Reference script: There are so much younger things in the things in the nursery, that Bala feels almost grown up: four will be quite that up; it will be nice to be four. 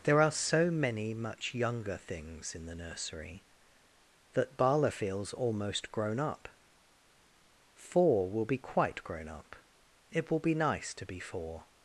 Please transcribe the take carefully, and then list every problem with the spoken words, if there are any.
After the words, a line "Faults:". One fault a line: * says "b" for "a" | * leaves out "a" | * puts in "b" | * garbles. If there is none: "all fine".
There are so many much younger things in the nursery, that Bala feels almost grown up: four will be quite grown up; it will be nice to be four.
Faults:
* puts in "many"
* leaves out "things in the"
* says "grown" for "that"